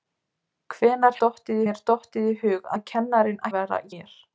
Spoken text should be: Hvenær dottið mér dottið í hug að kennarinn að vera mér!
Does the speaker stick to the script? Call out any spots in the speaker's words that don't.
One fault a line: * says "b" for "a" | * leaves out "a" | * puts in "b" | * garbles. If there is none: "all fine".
all fine